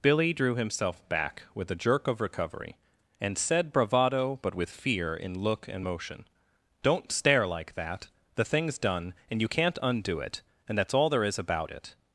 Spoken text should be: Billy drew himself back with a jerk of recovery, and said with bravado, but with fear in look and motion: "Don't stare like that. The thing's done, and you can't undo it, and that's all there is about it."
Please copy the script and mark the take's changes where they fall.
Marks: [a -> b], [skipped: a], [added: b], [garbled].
Billy drew himself back with a jerk of recovery, and said [skipped: with] bravado, but with fear in look and motion: "Don't stare like that. The thing's done, and you can't undo it, and that's all there is about it."